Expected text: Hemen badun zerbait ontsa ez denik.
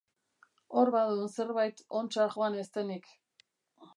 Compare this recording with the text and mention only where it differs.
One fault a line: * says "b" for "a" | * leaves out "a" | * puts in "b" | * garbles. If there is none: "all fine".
* says "Hor" for "Hemen"
* puts in "joan"